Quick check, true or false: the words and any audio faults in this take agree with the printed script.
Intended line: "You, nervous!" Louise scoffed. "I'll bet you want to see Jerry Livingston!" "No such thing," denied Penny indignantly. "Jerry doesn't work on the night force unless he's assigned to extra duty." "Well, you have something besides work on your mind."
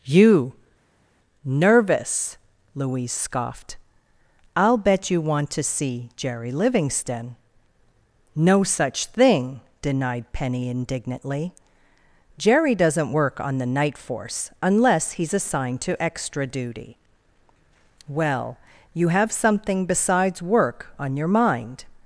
true